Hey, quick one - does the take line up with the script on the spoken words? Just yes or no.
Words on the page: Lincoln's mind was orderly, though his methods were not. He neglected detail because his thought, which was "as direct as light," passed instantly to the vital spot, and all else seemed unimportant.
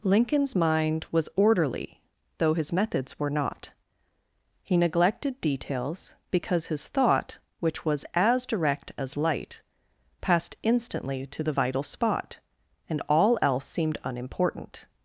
no